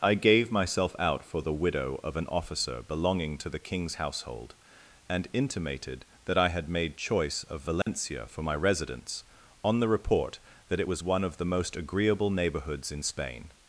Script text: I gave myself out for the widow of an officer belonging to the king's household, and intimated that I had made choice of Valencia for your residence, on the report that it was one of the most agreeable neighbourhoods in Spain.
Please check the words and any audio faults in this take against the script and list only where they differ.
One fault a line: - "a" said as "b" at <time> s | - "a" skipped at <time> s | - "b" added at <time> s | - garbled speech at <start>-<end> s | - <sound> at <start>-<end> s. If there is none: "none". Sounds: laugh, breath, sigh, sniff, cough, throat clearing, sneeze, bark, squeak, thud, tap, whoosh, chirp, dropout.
- dropout at 7.8-7.9 s
- "your" said as "my" at 8.4 s